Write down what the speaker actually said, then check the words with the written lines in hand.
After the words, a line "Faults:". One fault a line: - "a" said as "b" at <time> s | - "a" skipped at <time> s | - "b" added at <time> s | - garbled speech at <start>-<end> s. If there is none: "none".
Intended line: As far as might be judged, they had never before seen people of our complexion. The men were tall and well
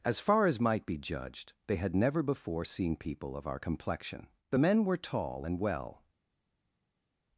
As far as might be judged, they had never before seen people of our complexion. The men were tall and well
Faults:
none